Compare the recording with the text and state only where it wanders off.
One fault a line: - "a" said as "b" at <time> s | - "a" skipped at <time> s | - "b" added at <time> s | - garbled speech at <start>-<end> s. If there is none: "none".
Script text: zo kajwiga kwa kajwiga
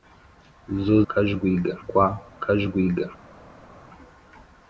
none